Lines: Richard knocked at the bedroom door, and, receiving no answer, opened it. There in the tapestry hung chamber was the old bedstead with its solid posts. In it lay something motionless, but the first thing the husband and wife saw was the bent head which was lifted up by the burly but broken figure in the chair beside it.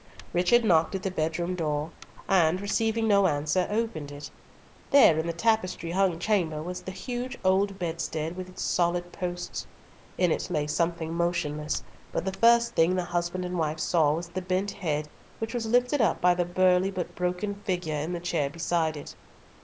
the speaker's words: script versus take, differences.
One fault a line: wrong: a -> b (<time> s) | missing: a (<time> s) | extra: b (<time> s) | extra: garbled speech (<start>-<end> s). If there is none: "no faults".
extra: huge (6.9 s)